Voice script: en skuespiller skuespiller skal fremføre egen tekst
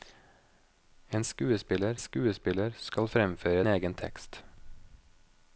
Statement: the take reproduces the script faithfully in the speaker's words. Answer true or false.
true